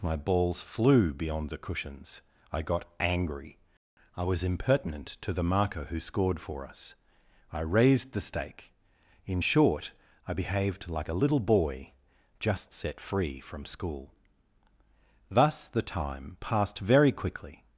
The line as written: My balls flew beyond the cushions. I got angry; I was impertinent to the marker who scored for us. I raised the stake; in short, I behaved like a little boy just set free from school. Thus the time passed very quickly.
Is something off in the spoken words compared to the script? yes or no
no